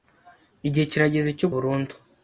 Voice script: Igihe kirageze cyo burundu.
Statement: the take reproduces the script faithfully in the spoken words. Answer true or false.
true